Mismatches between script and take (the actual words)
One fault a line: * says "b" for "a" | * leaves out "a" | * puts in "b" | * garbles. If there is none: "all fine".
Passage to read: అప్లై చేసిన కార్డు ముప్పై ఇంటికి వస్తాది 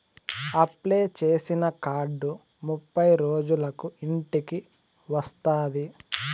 * puts in "రోజులకు"